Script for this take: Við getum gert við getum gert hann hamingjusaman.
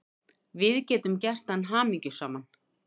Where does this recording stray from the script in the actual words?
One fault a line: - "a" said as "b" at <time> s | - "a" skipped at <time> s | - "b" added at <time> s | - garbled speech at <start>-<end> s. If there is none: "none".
- "við getum gert" skipped at 1.5 s